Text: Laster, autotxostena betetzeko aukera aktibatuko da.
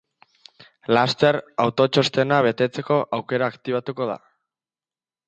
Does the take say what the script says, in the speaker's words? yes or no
yes